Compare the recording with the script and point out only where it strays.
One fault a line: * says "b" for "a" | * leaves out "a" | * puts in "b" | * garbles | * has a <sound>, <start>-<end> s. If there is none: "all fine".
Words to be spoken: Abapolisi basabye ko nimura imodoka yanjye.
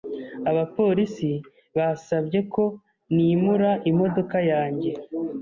all fine